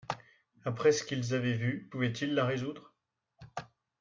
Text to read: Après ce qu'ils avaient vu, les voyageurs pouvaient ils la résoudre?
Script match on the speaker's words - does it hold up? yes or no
no